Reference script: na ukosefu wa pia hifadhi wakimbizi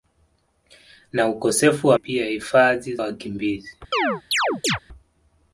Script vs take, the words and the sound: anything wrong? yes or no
yes